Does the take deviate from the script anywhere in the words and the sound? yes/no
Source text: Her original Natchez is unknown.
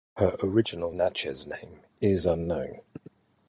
yes